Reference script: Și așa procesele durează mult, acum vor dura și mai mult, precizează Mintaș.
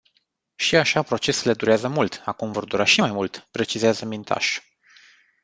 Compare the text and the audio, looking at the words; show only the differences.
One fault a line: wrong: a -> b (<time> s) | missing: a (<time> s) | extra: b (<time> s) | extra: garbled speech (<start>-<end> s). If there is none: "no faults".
no faults